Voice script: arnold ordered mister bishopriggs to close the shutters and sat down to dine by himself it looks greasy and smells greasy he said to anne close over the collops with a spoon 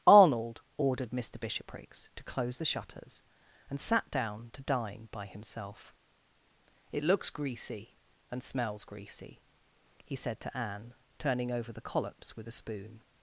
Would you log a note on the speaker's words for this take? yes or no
yes